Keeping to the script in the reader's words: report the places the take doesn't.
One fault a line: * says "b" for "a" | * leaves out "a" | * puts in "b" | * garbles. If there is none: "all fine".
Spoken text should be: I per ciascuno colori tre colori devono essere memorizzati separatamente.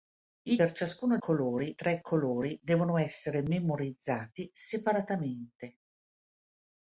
all fine